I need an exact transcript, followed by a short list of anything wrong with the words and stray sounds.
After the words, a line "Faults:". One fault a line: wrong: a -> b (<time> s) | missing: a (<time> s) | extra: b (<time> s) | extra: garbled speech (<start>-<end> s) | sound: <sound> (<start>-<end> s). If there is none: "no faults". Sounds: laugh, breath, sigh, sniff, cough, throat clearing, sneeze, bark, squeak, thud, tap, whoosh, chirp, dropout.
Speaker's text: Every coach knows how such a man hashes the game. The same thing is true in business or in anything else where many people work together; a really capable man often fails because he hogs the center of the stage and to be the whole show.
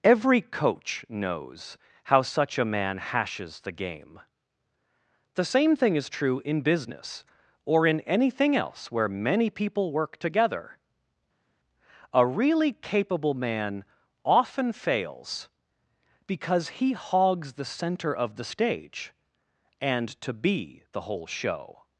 Every coach knows how such a man hashes the game. The same thing is true in business or in anything else where many people work together; a really capable man often fails because he hogs the center of the stage and to be the whole show.
Faults:
no faults